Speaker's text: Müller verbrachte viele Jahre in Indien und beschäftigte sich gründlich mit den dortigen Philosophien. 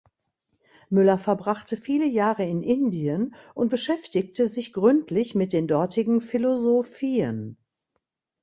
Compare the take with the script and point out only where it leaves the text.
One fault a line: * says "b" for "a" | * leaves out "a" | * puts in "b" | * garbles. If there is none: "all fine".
all fine